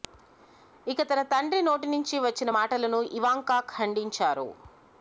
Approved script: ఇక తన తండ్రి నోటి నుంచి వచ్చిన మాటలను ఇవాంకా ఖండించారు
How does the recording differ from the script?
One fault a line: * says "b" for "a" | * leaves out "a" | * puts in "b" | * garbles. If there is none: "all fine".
all fine